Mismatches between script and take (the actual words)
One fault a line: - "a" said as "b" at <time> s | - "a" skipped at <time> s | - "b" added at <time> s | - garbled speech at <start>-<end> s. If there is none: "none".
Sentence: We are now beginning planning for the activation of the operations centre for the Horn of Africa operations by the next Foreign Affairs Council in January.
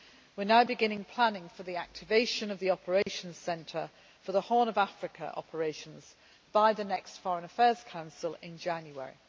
none